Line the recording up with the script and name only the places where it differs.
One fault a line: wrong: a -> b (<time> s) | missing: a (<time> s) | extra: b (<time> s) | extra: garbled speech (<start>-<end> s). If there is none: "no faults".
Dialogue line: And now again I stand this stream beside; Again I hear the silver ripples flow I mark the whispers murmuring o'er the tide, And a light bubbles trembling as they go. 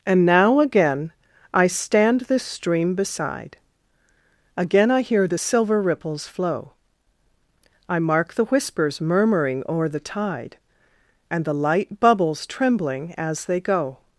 wrong: a -> the (11.4 s)